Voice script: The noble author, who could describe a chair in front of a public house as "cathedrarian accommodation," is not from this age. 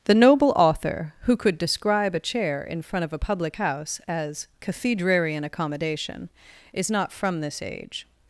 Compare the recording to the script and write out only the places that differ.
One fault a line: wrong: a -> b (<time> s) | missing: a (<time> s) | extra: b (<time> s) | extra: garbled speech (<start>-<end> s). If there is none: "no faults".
no faults